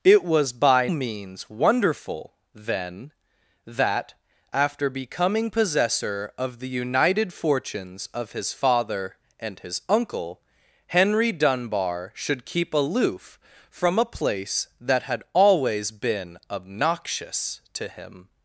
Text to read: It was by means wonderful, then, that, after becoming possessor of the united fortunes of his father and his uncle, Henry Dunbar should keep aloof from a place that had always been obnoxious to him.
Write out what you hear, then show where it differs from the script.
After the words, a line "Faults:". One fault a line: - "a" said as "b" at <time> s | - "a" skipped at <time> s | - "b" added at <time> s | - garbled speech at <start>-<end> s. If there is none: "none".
It was by means wonderful, then, that, after becoming possessor of the united fortunes of his father and his uncle, Henry Dunbar should keep aloof from a place that had always been obnoxious to him.
Faults:
none